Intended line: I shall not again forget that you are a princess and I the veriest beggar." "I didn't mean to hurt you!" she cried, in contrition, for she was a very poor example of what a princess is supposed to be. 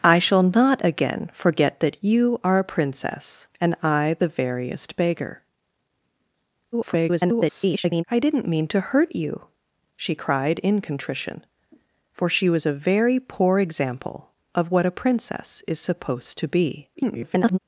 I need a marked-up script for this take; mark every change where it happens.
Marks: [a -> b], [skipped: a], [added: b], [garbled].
I shall not again forget that you are a princess and I the veriest beggar." [garbled] "I didn't mean to hurt you!" she cried, in contrition, for she was a very poor example of what a princess is supposed to be. [garbled]